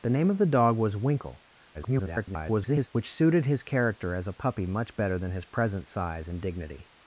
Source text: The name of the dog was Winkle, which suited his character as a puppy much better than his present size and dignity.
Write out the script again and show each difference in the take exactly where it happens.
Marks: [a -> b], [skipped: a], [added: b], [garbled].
The name of the dog was Winkle, [garbled] which suited his character as a puppy much better than his present size and dignity.